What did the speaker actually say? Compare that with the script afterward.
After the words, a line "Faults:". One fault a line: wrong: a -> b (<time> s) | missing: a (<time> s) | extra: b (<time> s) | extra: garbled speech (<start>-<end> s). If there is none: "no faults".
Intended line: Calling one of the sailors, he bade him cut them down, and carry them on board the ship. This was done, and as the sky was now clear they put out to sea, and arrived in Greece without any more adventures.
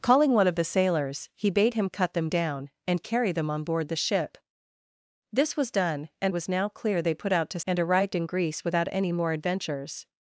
Calling one of the sailors, he bade him cut them down, and carry them on board the ship. This was done, and was now clear they put out to and arrived in Greece without any more adventures.
Faults:
missing: as the sky (6.3 s)
missing: sea (7.6 s)